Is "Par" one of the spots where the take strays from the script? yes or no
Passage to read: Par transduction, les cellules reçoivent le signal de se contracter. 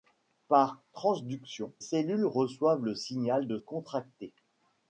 no